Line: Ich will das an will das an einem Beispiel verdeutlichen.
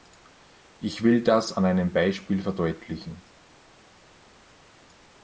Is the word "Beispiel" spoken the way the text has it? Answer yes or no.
yes